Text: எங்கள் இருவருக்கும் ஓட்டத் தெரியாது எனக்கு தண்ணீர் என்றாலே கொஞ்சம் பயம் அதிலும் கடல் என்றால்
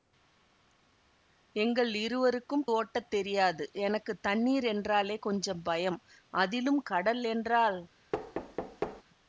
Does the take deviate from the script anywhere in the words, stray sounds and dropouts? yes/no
yes